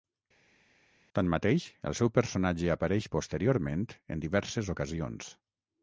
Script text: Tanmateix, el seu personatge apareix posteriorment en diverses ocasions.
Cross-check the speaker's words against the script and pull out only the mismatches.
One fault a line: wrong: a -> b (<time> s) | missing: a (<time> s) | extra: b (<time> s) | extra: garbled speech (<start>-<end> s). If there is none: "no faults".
no faults